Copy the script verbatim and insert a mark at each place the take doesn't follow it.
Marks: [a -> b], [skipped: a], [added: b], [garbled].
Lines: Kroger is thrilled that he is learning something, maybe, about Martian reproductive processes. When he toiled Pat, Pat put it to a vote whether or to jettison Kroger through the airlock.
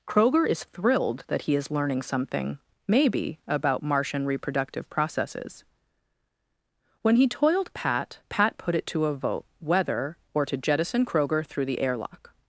Kroger is thrilled that he is learning something, maybe, about Martian reproductive processes. When he toiled Pat, Pat put it to a vote whether or to jettison Kroger through the airlock.